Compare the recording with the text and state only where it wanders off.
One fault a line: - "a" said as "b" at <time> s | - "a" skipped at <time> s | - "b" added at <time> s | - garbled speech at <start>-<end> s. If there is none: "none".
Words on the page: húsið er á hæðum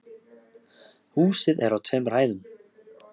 - "tveimur" added at 1.9 s